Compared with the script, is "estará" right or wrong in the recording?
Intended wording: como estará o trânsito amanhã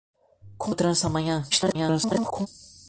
wrong